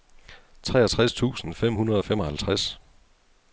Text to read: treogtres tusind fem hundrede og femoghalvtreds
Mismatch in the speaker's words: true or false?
false